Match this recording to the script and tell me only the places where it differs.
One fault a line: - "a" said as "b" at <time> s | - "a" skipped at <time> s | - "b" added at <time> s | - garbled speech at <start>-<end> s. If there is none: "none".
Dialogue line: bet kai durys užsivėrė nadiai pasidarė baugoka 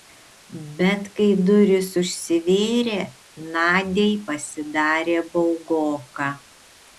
none